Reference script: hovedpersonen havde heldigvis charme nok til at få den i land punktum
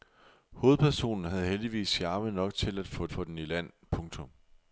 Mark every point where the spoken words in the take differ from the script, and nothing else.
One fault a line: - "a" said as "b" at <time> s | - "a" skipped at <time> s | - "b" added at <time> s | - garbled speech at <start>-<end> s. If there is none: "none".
- "få" added at 3.1 s